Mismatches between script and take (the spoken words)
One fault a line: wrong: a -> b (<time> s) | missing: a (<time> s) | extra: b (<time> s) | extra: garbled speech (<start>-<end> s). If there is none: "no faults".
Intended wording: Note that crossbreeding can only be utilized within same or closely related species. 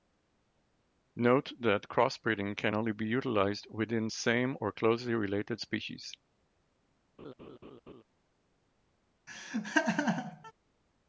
no faults